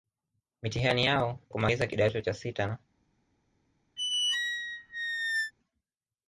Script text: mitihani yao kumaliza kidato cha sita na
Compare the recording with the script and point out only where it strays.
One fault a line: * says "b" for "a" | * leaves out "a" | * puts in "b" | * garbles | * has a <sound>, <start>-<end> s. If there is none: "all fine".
* has a squeak, 4.0-5.5 s